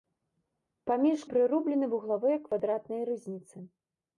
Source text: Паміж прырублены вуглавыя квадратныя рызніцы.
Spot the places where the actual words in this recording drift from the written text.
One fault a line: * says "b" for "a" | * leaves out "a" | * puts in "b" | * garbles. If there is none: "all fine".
all fine